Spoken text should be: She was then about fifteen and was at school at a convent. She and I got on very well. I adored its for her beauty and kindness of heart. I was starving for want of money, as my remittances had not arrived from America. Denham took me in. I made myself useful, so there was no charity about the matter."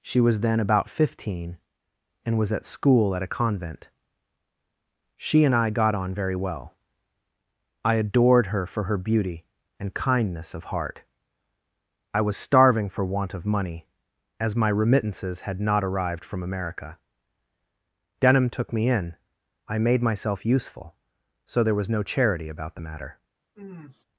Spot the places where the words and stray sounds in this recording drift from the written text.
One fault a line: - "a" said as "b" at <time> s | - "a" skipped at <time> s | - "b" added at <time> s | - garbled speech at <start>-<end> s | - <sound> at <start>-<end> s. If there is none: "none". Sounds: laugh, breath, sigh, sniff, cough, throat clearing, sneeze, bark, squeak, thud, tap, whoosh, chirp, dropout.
- "its" said as "her" at 8.5 s
- sniff at 23.6-24.1 s